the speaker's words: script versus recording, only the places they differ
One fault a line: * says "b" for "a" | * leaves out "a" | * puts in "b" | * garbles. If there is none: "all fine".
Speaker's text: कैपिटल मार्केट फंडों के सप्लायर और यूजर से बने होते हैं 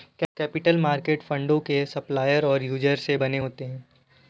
all fine